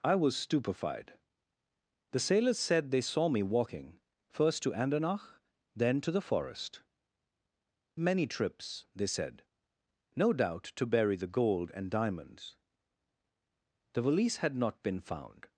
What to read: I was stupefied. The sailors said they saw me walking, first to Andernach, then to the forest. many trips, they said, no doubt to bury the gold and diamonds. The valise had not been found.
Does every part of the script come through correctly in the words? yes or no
yes